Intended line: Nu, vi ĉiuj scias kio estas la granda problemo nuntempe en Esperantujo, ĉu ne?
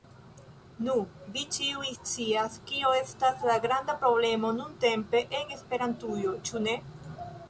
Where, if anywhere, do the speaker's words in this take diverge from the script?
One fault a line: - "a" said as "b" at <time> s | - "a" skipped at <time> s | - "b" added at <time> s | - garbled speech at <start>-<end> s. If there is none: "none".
none